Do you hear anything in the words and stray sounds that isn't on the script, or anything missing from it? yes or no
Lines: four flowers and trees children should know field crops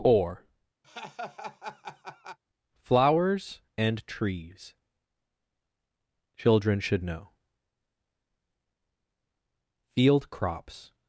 yes